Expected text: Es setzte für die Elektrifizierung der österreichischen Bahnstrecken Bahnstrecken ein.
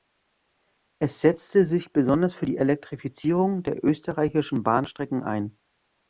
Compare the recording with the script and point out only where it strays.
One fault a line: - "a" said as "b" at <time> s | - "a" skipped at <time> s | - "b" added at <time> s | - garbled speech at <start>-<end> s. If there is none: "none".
- "sich besonders" added at 1.6 s
- "Bahnstrecken" skipped at 5.2 s